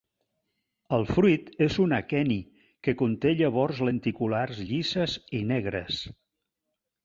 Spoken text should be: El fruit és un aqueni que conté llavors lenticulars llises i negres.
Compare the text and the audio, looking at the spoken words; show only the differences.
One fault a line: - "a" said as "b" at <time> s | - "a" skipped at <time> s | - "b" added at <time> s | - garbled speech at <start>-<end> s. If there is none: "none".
none